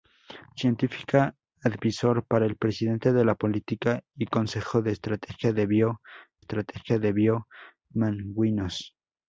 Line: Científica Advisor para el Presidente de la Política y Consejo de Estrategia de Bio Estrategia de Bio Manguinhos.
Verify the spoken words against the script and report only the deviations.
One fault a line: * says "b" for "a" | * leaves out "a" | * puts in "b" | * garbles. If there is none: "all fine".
all fine